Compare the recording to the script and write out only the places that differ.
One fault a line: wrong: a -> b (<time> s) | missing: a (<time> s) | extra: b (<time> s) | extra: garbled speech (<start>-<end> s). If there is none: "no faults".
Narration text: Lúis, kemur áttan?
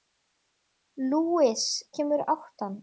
no faults